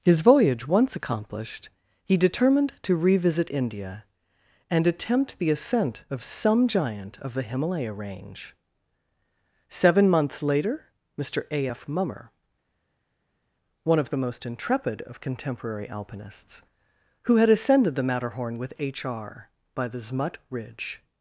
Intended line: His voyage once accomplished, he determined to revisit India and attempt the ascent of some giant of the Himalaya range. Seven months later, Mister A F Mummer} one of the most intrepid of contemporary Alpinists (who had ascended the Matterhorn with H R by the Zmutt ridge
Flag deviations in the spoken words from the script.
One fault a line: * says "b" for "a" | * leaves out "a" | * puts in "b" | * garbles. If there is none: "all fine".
all fine